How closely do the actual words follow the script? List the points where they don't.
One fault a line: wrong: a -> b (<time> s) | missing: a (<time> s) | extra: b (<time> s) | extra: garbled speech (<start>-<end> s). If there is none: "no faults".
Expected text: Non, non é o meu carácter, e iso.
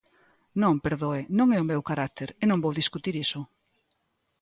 extra: perdoe (0.8 s)
extra: non vou discutir (2.5 s)